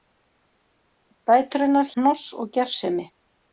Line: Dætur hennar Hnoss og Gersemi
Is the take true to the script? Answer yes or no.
yes